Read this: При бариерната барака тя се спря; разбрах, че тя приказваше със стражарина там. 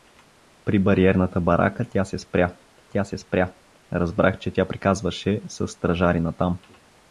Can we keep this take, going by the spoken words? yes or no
no